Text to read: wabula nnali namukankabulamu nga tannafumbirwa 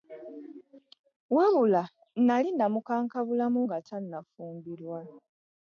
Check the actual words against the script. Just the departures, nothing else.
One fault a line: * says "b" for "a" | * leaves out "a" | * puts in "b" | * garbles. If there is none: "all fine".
all fine